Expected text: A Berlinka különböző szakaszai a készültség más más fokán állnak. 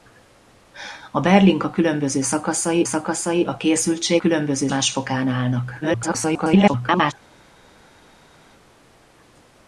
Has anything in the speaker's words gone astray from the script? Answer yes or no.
yes